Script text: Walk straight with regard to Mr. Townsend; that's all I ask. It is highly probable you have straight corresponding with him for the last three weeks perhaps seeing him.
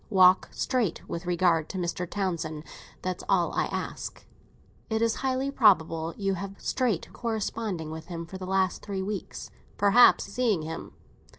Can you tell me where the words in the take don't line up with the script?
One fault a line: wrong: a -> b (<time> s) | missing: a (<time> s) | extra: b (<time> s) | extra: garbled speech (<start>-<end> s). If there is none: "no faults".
no faults